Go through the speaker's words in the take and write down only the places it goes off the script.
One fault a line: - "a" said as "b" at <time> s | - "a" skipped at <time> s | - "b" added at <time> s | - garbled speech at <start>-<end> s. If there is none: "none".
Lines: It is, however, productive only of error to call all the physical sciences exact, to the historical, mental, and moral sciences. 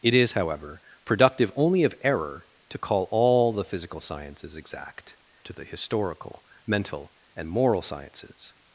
none